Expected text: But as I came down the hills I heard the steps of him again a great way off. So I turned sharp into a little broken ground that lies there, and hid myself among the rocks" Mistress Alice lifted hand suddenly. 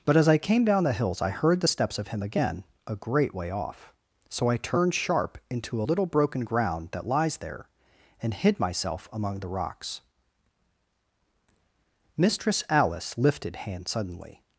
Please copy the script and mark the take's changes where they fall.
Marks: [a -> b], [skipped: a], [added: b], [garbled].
But as I came down the hills I heard the steps of him again a great way off. So I turned sharp into a little broken ground that lies there, and hid myself among the rocks" Mistress Alice lifted hand suddenly.